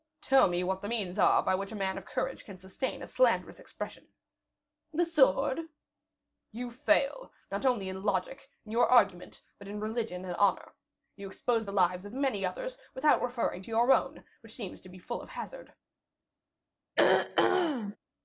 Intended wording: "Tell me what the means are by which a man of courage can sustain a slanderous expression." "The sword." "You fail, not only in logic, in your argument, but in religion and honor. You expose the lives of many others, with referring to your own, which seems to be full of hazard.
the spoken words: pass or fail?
fail